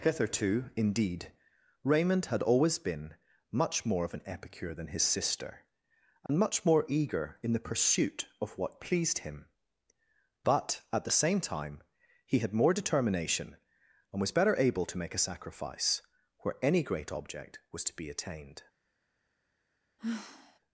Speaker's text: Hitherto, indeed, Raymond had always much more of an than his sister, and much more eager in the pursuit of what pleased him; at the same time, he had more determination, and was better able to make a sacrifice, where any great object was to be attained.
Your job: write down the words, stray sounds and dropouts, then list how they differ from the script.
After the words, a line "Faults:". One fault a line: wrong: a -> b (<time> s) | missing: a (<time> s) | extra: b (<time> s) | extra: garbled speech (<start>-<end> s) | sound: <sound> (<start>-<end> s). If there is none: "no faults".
Hitherto, indeed, Raymond had always been much more of an epicure than his sister, and much more eager in the pursuit of what pleased him; but at the same time, he had more determination, and was better able to make a sacrifice, where any great object was to be attained.
Faults:
extra: been (2.8 s)
extra: epicure (4.2 s)
sound: dropout (6.3-6.3 s)
extra: but (10.4 s)
sound: sigh (20.0-20.6 s)